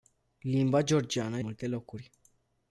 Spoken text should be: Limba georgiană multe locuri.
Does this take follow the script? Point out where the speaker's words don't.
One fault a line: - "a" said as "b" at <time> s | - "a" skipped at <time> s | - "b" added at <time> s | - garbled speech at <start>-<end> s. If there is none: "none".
none